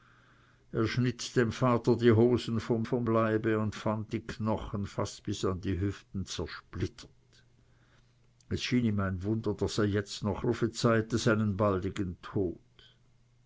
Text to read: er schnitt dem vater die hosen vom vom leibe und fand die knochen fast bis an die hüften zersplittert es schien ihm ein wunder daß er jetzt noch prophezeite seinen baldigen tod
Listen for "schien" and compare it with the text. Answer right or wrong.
right